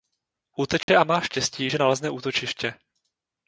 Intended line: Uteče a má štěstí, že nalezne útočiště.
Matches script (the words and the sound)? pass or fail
fail